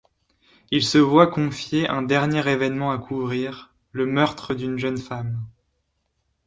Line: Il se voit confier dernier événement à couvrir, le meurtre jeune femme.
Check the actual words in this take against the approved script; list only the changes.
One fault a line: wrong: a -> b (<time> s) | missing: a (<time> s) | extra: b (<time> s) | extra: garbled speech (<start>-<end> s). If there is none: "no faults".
extra: un (1.9 s)
extra: d'une (4.5 s)